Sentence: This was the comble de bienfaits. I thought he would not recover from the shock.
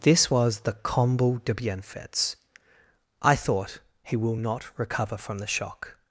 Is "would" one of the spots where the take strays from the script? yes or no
yes